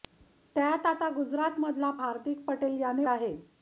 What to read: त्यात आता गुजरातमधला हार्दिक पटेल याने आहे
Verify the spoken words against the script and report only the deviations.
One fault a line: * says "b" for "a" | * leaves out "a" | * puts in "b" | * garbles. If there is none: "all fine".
all fine